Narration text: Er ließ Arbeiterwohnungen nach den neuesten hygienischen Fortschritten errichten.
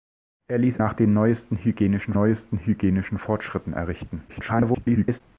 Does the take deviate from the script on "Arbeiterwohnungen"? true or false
true